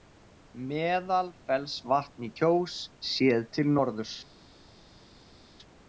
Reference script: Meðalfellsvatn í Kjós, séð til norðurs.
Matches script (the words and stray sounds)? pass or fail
pass